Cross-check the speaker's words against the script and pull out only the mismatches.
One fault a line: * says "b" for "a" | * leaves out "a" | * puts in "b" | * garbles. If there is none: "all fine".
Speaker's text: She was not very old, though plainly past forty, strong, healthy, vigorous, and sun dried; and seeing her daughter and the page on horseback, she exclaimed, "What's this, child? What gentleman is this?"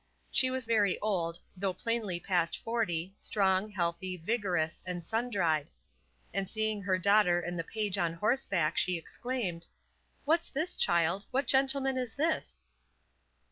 * leaves out "not"